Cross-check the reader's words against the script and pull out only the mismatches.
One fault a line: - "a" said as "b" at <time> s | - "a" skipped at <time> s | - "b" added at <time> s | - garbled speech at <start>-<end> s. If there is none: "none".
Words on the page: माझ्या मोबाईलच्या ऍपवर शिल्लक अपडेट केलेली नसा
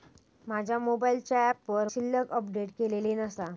none